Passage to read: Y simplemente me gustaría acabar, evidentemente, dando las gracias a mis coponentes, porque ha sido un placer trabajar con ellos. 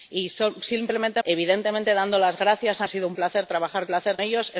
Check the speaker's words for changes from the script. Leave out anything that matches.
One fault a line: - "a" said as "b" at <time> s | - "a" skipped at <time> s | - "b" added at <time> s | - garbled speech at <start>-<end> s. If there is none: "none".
- "me gustaría acabar" skipped at 1.2 s
- "mis coponentes porque" skipped at 2.9 s
- "con" said as "placer" at 3.9 s